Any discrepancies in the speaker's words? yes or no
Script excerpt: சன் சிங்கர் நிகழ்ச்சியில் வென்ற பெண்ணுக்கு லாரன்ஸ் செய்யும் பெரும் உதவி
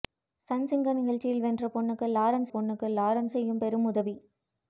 yes